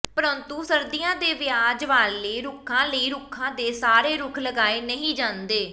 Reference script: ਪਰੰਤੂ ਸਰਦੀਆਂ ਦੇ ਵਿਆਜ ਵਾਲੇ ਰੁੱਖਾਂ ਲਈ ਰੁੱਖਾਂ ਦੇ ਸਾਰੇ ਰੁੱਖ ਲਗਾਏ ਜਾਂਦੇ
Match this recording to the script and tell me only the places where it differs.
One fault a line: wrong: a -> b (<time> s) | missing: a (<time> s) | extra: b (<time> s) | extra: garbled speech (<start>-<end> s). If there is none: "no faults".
extra: ਨਹੀਂ (4.8 s)